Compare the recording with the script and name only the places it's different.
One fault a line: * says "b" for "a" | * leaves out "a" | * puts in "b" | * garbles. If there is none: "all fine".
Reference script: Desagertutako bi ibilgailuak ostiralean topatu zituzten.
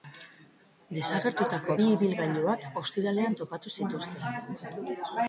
all fine